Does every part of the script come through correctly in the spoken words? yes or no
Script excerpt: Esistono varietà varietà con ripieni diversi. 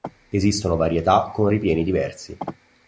no